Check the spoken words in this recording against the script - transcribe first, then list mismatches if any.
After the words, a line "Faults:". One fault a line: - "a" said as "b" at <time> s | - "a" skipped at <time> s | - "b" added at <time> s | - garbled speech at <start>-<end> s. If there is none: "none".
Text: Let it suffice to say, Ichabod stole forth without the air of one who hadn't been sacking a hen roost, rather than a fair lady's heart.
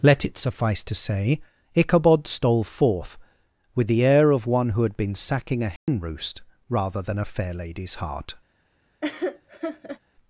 Let it suffice to say, Ichabod stole forth with the air of one who had been sacking a hen roost, rather than a fair lady's heart.
Faults:
- "without" said as "with" at 3.8 s
- "hadn't" said as "had" at 4.8 s